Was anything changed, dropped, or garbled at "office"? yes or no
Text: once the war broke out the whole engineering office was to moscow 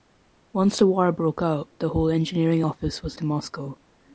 no